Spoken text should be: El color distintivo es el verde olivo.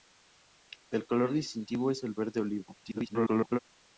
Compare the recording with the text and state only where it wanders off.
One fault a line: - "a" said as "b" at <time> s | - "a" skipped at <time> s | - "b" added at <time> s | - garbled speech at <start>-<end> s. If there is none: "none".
- garbled speech at 2.8-3.6 s